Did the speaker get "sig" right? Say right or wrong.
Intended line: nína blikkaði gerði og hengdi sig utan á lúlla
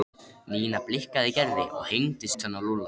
wrong